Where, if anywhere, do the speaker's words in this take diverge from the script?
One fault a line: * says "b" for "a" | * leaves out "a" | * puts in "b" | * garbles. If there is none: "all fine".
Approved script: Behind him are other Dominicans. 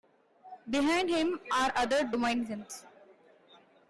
all fine